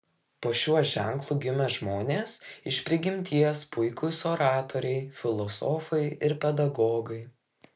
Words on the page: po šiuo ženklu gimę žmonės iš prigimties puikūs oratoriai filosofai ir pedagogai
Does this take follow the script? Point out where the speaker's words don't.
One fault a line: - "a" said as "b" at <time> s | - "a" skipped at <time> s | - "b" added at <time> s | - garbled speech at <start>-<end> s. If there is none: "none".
none